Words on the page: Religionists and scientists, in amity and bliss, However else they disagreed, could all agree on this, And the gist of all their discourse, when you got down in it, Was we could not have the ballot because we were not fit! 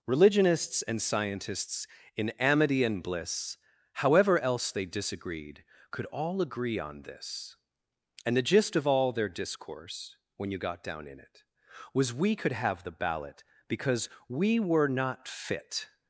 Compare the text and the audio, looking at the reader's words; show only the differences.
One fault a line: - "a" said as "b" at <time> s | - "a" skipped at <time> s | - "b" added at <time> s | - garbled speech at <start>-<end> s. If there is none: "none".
- "not" skipped at 12.5 s